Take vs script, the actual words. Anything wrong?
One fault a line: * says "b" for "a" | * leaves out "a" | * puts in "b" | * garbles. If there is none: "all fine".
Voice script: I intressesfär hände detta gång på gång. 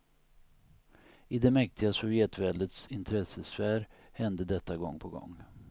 * puts in "det mäktiga sovjetväldets"